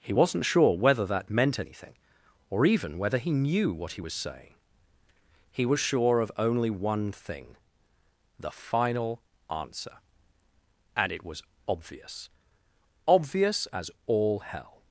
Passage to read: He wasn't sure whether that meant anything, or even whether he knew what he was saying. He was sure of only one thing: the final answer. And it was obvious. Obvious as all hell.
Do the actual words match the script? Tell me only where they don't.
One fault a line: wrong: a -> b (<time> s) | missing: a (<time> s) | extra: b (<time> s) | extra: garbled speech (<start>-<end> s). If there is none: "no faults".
no faults